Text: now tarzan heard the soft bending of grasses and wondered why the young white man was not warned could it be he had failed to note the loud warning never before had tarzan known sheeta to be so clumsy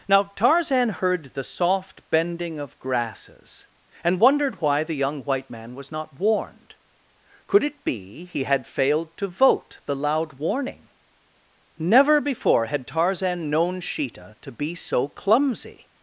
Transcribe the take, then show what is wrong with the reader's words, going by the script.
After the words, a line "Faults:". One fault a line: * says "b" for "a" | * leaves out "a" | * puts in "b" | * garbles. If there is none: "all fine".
now tarzan heard the soft bending of grasses and wondered why the young white man was not warned could it be he had failed to vote the loud warning never before had tarzan known sheeta to be so clumsy
Faults:
* says "vote" for "note"